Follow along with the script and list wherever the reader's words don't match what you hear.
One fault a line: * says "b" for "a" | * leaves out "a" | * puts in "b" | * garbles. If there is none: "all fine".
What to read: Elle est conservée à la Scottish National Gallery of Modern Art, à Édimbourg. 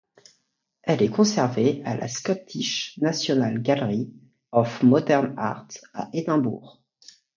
all fine